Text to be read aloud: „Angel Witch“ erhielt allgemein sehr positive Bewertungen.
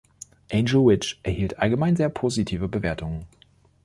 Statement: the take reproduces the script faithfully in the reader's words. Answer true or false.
true